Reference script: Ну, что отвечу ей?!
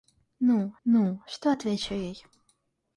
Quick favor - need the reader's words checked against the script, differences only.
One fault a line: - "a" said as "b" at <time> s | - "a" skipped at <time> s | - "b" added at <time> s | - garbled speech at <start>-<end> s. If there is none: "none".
- "ну" added at 0.8 s